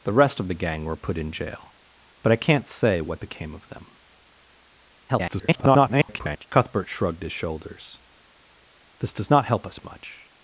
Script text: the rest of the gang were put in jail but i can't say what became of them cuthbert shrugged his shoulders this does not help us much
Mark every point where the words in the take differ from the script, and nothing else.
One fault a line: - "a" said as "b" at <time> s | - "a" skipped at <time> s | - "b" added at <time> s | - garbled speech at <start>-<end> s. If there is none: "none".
- garbled speech at 5.1-6.5 s